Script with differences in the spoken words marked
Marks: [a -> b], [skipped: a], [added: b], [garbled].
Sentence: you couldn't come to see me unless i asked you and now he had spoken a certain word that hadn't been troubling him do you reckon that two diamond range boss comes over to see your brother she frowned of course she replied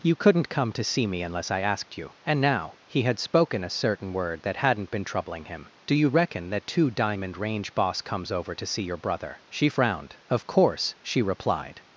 you couldn't come to see me unless i asked you and now he had spoken a certain word that hadn't been troubling him do you reckon that two diamond range boss comes over to see your brother she frowned of course she replied